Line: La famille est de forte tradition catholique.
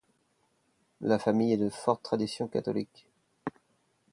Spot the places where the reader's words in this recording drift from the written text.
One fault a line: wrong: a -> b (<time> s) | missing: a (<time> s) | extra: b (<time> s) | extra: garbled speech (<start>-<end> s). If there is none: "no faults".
no faults